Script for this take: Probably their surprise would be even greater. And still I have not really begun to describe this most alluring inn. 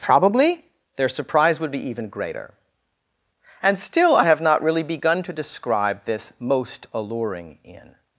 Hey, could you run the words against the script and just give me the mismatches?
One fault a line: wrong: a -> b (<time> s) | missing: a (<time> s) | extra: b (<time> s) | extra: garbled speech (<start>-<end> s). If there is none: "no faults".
no faults